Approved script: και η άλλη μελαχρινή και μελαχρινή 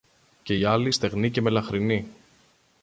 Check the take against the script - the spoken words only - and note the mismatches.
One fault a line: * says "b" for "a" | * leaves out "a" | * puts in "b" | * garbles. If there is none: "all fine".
* says "στεγνή" for "μελαχρινή"